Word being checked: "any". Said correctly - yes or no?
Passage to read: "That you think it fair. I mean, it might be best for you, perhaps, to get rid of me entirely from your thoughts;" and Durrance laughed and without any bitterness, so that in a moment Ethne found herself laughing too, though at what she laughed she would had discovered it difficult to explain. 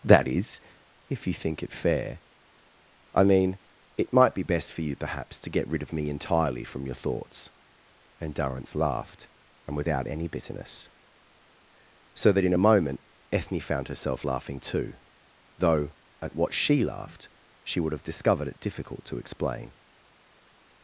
yes